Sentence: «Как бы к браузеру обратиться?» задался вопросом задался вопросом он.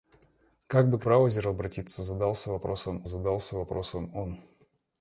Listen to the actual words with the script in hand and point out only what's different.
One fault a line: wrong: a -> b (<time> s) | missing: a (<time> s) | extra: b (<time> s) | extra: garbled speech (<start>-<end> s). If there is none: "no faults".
no faults